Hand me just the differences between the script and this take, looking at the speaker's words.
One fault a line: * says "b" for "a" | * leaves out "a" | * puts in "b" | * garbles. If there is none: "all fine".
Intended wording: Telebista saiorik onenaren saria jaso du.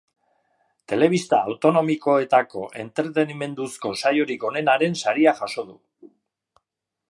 * puts in "autonomikoetako entretenimenduzko"